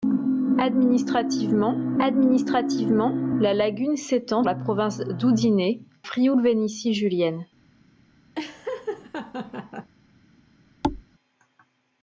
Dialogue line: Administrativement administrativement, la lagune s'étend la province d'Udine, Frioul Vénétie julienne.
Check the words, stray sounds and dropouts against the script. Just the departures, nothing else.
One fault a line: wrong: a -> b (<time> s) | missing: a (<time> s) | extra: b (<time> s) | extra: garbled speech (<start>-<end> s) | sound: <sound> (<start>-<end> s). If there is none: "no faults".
sound: laugh (8.4-9.9 s)
sound: thud (10.8-11.0 s)